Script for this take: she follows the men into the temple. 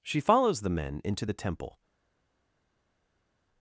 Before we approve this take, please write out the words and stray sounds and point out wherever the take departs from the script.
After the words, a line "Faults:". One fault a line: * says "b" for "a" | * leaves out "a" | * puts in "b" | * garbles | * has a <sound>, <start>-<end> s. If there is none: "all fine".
she follows the men into the temple.
Faults:
all fine